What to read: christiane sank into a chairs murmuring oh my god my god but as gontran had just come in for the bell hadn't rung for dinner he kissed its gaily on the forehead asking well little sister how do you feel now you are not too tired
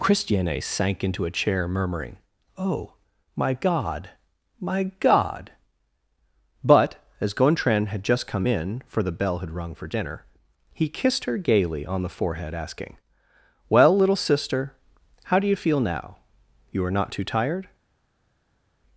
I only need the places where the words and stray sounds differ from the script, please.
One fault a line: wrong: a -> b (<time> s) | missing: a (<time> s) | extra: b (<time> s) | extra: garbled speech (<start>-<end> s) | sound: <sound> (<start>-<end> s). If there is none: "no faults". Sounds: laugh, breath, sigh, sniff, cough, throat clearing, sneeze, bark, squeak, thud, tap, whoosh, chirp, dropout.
wrong: chairs -> chair (1.3 s)
wrong: hadn't -> had (9.4 s)
wrong: its -> her (11.2 s)